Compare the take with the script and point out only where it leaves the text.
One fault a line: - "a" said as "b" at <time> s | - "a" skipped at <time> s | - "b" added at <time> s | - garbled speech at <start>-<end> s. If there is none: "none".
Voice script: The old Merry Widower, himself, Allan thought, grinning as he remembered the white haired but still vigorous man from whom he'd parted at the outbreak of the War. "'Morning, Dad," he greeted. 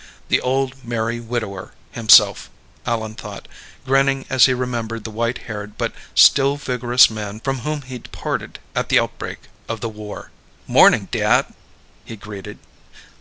none